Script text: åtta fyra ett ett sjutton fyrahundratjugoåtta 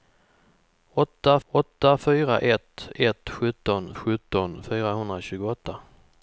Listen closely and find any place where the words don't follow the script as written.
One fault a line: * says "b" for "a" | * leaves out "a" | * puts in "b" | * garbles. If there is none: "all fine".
* puts in "åtta"
* puts in "sjutton"